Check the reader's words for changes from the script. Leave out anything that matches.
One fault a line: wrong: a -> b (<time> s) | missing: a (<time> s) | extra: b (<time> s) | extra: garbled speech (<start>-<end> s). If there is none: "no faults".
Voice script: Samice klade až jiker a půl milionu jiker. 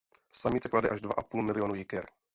wrong: jiker -> dva (1.0 s)